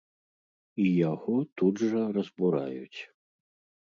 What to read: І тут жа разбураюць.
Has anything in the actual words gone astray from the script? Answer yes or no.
yes